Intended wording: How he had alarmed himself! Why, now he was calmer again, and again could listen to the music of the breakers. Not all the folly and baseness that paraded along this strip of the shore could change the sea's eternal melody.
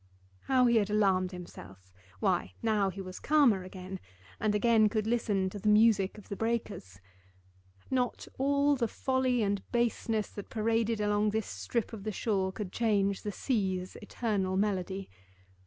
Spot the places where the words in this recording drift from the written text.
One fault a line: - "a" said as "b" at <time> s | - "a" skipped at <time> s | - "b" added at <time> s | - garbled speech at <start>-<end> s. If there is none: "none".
none